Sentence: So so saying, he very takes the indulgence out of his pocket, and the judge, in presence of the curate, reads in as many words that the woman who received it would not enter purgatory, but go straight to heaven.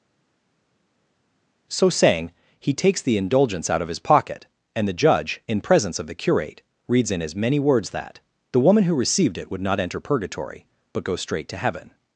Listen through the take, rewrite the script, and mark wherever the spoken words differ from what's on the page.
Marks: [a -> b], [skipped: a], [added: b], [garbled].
So [skipped: so] saying, he [skipped: very] takes the indulgence out of his pocket, and the judge, in presence of the curate, reads in as many words that the woman who received it would not enter purgatory, but go straight to heaven.